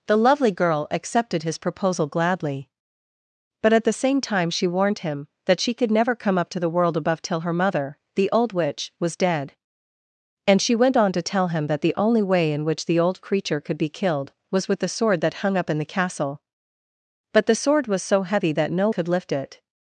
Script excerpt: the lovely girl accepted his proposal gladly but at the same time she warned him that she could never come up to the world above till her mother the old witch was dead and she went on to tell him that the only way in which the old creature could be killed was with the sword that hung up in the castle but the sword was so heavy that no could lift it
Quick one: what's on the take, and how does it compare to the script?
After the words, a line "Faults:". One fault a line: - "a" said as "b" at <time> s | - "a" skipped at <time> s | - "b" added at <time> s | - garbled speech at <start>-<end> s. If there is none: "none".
the lovely girl accepted his proposal gladly but at the same time she warned him that she could never come up to the world above till her mother the old witch was dead and she went on to tell him that the only way in which the old creature could be killed was with the sword that hung up in the castle but the sword was so heavy that no could lift it
Faults:
none